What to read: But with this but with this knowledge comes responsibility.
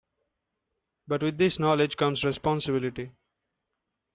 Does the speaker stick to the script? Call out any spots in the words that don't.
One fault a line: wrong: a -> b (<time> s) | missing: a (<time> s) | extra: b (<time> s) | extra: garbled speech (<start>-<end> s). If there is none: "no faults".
missing: but with this (1.6 s)